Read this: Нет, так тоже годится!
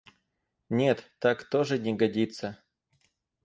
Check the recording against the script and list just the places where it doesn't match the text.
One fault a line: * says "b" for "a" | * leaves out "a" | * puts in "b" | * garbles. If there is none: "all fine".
* puts in "не"